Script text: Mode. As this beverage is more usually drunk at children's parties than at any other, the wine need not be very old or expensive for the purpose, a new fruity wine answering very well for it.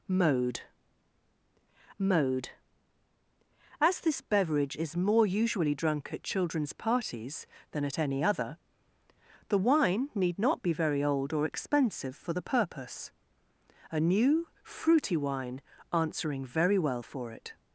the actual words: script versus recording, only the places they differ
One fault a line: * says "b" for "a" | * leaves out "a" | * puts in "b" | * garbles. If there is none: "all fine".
* puts in "mode"